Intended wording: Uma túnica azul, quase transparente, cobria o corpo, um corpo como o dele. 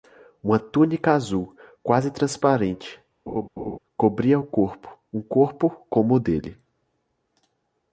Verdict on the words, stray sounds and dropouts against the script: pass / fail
fail